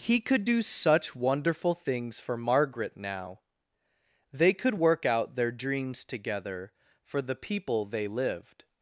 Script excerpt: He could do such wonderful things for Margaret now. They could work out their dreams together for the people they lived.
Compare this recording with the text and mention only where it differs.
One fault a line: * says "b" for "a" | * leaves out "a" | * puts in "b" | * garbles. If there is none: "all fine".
all fine